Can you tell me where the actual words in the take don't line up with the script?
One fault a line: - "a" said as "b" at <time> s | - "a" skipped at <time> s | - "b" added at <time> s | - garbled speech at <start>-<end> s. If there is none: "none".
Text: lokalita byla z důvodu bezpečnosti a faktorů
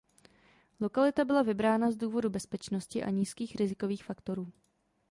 - "vybrána" added at 1.4 s
- "nízkých rizikových" added at 3.1 s